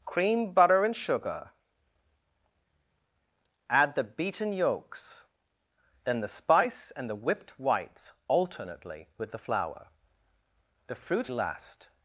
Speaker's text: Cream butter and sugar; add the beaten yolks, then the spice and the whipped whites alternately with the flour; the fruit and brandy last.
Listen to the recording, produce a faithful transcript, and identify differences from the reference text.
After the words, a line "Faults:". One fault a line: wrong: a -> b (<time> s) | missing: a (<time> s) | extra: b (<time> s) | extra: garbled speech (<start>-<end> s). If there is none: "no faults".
Cream butter and sugar; add the beaten yolks, then the spice and the whipped whites alternately with the flour; the fruit last.
Faults:
missing: and brandy (11.3 s)